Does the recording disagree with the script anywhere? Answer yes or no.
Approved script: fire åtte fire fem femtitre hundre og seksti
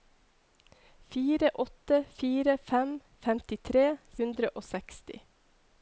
no